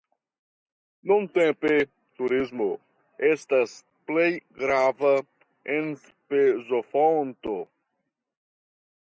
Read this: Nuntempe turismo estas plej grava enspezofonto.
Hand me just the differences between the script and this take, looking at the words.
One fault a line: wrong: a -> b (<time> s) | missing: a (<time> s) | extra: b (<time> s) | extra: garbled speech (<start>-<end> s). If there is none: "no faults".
no faults